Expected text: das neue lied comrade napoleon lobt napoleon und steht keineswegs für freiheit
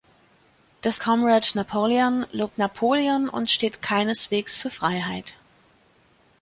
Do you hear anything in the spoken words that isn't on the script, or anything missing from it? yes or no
yes